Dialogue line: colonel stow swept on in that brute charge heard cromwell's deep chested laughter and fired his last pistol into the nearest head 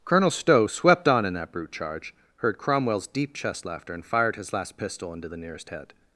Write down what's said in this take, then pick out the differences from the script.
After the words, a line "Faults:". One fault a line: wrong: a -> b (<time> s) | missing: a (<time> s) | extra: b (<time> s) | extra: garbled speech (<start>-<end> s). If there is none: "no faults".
colonel stow swept on in that brute charge heard cromwell's deep chest laughter and fired his last pistol into the nearest head
Faults:
wrong: chested -> chest (3.3 s)